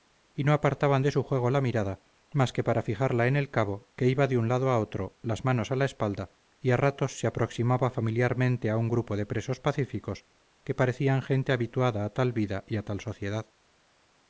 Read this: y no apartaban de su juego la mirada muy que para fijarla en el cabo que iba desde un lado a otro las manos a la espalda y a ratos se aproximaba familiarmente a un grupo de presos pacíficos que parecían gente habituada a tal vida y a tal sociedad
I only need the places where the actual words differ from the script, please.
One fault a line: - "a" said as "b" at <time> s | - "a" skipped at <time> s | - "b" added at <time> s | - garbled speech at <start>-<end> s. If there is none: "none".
- "muy" said as "más" at 2.3 s
- "desde" said as "de" at 4.3 s